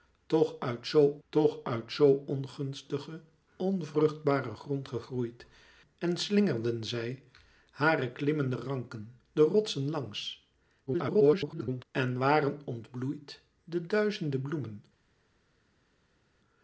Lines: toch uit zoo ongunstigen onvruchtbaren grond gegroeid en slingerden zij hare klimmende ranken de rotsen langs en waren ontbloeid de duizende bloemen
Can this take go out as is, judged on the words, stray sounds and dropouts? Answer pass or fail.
fail